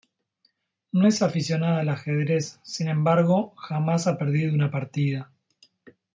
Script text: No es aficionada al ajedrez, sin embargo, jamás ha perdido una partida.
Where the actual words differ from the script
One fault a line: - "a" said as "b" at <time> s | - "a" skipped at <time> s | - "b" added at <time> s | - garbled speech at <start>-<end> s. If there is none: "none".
none